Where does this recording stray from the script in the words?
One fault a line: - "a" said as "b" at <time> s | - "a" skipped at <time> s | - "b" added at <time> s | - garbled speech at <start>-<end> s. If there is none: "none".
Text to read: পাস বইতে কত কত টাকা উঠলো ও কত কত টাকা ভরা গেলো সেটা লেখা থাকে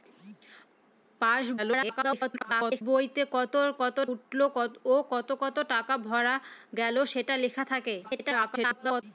- garbled speech at 1.6-2.8 s
- "টাকা" skipped at 4.0 s
- garbled speech at 8.0-9.0 s